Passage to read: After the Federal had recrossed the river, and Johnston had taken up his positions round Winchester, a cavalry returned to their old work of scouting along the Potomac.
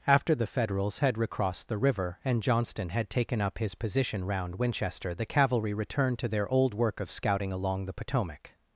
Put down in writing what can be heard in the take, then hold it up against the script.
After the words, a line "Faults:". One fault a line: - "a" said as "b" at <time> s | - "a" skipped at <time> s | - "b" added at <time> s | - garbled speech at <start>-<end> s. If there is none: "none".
After the Federals had recrossed the river, and Johnston had taken up his position round Winchester, the cavalry returned to their old work of scouting along the Potomac.
Faults:
- "Federal" said as "Federals" at 0.5 s
- "positions" said as "position" at 3.8 s
- "a" said as "the" at 5.1 s